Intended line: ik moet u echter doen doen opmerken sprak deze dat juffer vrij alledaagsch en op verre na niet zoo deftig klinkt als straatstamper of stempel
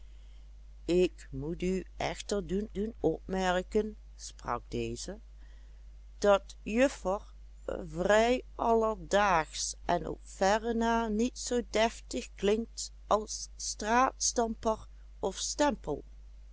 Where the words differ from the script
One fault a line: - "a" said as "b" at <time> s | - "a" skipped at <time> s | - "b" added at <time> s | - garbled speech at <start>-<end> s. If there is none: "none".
none